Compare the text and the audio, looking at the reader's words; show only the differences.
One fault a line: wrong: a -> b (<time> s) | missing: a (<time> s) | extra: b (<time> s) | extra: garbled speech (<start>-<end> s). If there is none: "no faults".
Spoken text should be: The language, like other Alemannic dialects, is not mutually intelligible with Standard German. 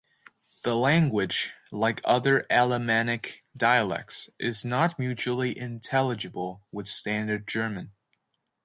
no faults